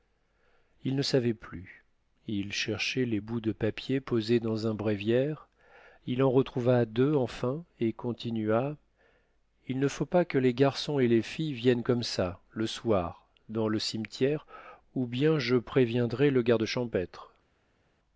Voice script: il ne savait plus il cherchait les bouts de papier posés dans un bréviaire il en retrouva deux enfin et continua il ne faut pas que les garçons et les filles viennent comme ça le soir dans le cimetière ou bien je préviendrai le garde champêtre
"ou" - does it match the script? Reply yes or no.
yes